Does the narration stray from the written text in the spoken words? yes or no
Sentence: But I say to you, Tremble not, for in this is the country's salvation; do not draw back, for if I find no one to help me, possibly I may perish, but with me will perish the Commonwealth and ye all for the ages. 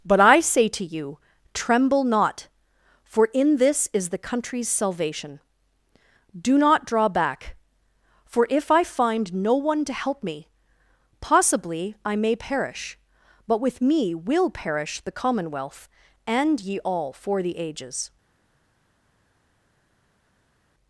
no